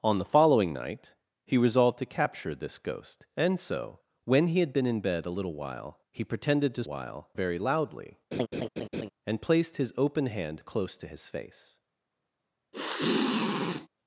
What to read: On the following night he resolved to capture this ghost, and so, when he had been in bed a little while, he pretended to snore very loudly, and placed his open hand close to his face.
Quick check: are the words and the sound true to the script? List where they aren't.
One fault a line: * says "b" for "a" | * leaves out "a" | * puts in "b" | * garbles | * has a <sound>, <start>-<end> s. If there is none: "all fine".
* says "while" for "snore"
* has a laugh, 8.3-9.1 s
* has a sniff, 12.7-13.9 s